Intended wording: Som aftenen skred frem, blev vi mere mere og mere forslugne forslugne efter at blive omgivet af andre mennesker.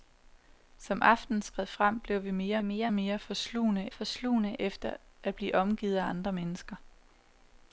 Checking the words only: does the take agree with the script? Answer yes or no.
yes